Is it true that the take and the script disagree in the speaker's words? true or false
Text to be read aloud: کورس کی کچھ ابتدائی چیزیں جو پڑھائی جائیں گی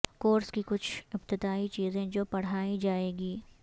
false